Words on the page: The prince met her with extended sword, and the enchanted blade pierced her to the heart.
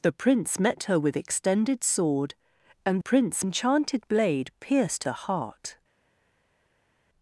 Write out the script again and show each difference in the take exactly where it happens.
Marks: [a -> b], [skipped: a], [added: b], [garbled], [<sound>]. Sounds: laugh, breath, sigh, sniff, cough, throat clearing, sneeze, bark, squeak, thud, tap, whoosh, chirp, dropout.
The prince met her with extended sword, and [the -> prince] enchanted blade pierced [skipped: her to] the heart.